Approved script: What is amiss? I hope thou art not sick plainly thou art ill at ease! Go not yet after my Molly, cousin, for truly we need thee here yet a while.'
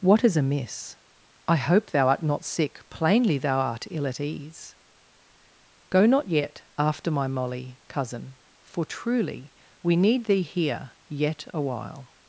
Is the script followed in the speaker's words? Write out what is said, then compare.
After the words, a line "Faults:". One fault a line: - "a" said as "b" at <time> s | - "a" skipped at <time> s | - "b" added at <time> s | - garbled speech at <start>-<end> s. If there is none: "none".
What is amiss? I hope thou art not sick plainly thou art ill at ease! Go not yet after my Molly, cousin, for truly we need thee here yet a while.'
Faults:
none